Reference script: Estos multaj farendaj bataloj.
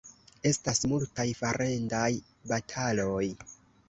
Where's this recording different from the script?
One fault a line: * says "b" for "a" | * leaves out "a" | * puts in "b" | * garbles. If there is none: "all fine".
* says "Estas" for "Estos"